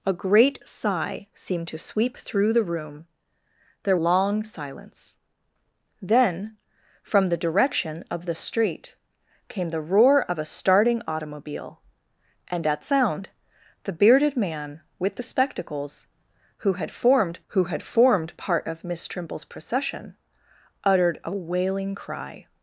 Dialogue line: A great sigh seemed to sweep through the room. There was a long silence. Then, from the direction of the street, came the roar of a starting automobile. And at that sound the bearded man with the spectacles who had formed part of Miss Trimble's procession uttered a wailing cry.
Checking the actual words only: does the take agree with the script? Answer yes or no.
no